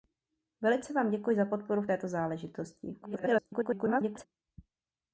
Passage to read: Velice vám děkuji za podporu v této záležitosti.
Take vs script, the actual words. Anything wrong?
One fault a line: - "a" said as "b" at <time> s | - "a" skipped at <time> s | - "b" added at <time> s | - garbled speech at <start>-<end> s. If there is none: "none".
- garbled speech at 3.0-4.3 s